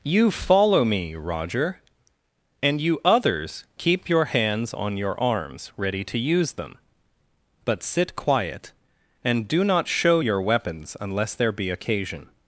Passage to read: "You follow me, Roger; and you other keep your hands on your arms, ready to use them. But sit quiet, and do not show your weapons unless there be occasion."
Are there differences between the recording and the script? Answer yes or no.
yes